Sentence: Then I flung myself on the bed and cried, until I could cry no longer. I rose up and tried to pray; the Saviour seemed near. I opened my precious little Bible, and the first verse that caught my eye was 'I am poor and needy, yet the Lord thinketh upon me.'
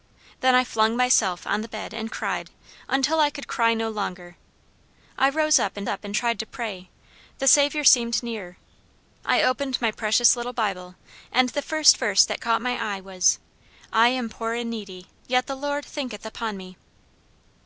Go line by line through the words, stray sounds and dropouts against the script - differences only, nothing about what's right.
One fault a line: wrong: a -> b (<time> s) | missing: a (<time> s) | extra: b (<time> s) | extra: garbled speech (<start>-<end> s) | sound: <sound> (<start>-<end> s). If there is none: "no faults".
extra: up and (5.9 s)